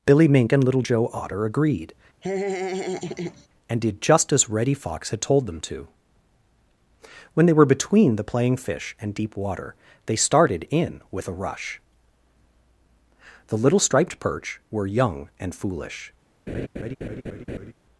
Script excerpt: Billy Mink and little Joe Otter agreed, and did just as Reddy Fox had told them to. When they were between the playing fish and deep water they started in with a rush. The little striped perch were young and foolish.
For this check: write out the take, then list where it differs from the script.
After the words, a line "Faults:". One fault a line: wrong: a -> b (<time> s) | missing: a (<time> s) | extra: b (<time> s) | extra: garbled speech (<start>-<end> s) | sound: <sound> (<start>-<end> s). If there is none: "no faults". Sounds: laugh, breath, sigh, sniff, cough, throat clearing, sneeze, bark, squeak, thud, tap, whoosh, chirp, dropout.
Billy Mink and little Joe Otter agreed, and did just as Reddy Fox had told them to. When they were between the playing fish and deep water they started in with a rush. The little striped perch were young and foolish.
Faults:
sound: laugh (2.2-3.5 s)
sound: laugh (16.5-17.7 s)